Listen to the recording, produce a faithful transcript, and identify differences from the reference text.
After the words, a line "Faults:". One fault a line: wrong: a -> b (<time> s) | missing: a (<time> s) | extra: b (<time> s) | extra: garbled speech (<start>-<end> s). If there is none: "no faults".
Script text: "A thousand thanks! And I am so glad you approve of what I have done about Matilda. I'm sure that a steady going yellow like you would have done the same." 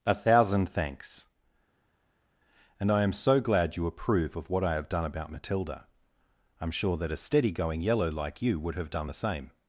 "A thousand thanks! And I am so glad you approve of what I have done about Matilda. I'm sure that a steady going yellow like you would have done the same."
Faults:
no faults